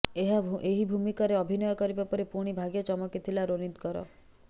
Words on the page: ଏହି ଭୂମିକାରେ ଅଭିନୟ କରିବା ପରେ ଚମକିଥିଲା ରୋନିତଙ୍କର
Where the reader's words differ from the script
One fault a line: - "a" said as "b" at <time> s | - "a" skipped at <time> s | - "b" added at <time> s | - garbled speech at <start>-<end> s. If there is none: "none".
- "ପୁଣି ଭାଗ୍ୟ" added at 2.3 s